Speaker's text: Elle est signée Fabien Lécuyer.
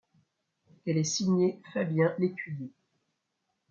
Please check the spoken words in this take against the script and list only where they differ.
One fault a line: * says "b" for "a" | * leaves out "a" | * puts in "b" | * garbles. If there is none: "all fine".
all fine